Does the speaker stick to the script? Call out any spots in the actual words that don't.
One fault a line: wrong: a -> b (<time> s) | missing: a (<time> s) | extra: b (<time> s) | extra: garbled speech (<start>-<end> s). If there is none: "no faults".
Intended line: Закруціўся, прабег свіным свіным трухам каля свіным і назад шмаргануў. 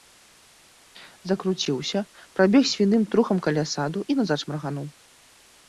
missing: свіным (3.0 s)
wrong: свіным -> саду (3.8 s)